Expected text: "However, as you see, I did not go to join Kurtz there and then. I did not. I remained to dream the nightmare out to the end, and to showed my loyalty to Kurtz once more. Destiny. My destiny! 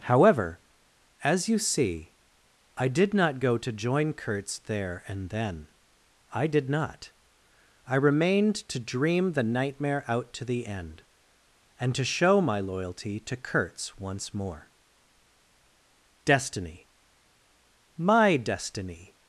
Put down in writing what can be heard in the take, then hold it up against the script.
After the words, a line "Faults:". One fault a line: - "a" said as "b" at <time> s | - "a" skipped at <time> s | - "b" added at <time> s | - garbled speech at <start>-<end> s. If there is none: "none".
"However, as you see, I did not go to join Kurtz there and then. I did not. I remained to dream the nightmare out to the end, and to show my loyalty to Kurtz once more. Destiny. My destiny!
Faults:
- "showed" said as "show" at 12.0 s